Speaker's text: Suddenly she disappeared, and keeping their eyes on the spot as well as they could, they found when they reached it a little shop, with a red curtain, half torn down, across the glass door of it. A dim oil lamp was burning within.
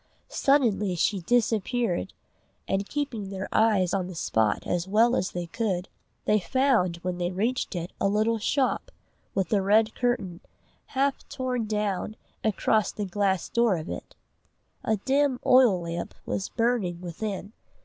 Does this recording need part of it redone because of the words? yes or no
no